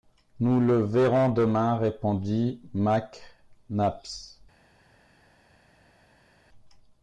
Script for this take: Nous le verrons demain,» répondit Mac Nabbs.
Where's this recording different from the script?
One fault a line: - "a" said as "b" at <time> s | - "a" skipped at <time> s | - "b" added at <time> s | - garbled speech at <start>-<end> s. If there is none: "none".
none